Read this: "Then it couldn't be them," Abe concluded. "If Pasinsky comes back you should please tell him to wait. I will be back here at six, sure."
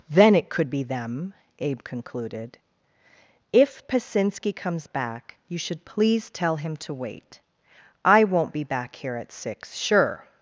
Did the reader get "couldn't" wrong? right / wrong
wrong